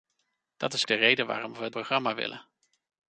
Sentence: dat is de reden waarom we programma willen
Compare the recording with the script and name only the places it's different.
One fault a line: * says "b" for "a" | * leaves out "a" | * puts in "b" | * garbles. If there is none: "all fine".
all fine